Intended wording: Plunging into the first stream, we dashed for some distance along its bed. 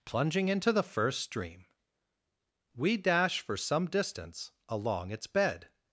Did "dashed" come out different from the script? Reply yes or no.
yes